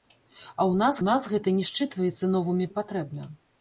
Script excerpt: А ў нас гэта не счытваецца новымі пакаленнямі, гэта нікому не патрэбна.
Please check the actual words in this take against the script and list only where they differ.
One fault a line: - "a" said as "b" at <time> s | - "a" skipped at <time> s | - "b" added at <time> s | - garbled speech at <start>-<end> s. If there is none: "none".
- "нас" added at 1.1 s
- "пакаленнямі гэта нікому" skipped at 2.7 s